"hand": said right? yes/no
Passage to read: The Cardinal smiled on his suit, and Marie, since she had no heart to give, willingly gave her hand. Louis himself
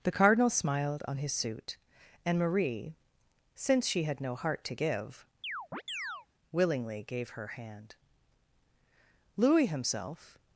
yes